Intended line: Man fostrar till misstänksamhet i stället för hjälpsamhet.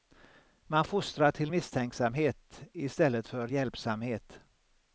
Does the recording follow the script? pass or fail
pass